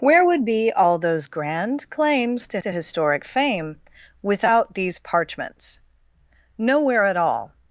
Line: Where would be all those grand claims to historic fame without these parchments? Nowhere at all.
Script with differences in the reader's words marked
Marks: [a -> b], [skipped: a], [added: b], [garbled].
Where would be all those grand claims to [added: to] historic fame without these parchments? Nowhere at all.